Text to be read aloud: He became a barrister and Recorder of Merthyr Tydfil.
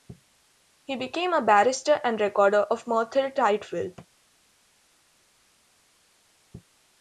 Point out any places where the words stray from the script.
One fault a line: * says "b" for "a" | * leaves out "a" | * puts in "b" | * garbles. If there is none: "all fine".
all fine